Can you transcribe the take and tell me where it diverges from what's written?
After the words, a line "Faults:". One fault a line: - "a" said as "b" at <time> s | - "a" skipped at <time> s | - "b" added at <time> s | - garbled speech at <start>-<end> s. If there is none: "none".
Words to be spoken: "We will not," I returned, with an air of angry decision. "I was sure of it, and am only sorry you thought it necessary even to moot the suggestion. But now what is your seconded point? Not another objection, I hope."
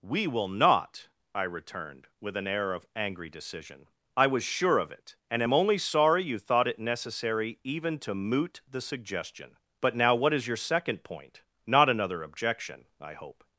"We will not," I returned, with an air of angry decision. "I was sure of it, and am only sorry you thought it necessary even to moot the suggestion. But now what is your second point? Not another objection, I hope."
Faults:
- "seconded" said as "second" at 10.6 s